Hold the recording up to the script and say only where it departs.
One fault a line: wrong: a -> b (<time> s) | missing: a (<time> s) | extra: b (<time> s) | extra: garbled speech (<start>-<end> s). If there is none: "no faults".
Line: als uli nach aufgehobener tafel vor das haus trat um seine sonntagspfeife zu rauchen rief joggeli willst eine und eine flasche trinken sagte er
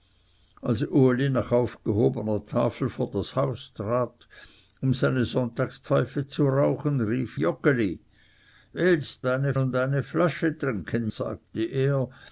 no faults